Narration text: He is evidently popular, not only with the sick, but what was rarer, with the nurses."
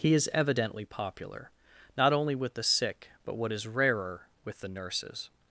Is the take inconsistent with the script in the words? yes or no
yes